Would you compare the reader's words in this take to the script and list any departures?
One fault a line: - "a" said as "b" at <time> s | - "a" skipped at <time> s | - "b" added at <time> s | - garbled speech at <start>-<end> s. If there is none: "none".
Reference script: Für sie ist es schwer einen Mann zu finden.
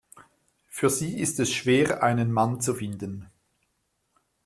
none